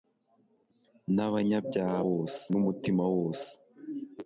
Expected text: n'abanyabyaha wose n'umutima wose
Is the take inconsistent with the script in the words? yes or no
no